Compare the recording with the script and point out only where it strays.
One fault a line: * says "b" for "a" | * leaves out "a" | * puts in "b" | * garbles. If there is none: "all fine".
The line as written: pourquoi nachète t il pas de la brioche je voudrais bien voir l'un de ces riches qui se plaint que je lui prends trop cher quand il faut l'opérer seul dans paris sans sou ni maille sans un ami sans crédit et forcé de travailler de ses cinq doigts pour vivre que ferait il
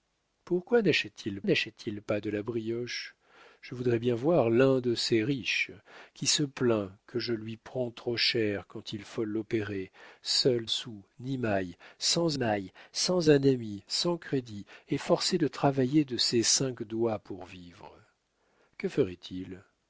* puts in "nachète t il"
* says "sou ni maille" for "dans paris"
* leaves out "sou ni"